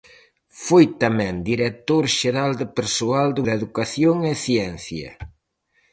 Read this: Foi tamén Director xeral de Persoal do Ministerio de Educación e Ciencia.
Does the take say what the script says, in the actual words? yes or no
no